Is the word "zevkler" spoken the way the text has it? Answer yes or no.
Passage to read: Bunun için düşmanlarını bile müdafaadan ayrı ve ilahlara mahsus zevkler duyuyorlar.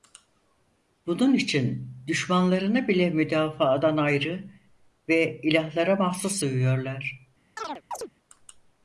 no